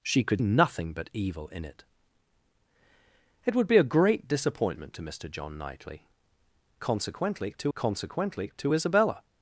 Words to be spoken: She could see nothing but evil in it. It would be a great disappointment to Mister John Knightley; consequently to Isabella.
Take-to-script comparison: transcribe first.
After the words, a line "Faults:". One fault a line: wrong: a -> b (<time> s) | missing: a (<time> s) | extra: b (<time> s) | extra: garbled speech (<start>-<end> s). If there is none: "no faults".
She could nothing but evil in it. It would be a great disappointment to Mister John Knightley; consequently to consequently to Isabella.
Faults:
missing: see (0.4 s)
extra: consequently to (7.7 s)